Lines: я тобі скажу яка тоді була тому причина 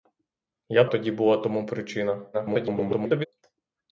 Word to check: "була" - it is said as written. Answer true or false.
true